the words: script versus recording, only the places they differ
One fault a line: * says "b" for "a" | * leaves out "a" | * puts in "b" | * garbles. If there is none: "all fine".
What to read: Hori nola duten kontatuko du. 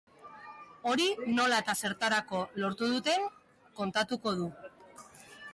* puts in "eta zertarako lortu"